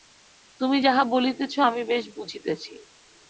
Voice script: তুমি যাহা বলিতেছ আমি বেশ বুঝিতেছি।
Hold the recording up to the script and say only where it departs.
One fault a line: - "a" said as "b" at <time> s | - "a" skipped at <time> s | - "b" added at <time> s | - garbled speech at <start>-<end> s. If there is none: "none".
none